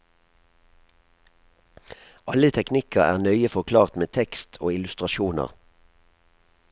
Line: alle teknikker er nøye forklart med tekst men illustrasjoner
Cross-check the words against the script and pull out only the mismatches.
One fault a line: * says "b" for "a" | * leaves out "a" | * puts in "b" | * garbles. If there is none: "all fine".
* says "og" for "men"